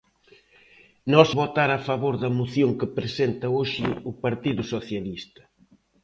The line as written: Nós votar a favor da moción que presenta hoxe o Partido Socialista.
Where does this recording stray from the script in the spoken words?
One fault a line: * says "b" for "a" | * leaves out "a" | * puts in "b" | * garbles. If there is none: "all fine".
all fine